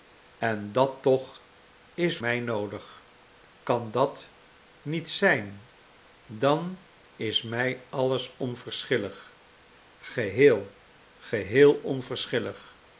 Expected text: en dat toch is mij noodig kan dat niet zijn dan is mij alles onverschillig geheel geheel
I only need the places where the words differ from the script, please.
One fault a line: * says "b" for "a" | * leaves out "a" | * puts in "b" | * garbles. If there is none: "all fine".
all fine